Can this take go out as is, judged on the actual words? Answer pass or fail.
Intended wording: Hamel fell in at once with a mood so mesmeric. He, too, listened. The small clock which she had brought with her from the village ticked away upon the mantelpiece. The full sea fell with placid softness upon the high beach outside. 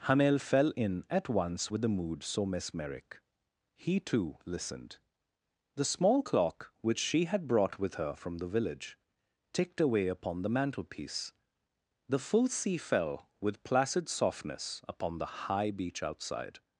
fail